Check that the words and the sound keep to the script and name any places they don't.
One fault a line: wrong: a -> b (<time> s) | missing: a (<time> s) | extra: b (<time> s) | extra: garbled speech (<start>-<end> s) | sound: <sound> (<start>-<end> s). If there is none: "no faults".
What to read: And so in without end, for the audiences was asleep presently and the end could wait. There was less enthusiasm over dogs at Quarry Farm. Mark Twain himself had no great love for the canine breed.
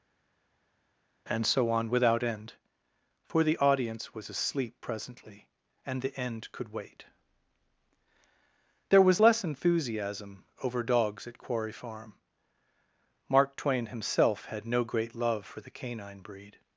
wrong: in -> on (1.7 s)
wrong: audiences -> audience (3.6 s)